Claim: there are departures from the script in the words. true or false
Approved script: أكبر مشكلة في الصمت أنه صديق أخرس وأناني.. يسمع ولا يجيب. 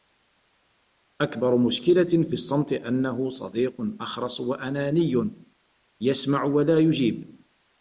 false